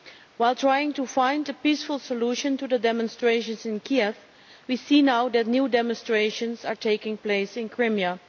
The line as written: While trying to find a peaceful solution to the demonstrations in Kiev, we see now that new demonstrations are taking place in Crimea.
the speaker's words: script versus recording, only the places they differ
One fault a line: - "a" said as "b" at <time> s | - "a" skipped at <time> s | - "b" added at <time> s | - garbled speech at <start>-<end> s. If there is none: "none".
none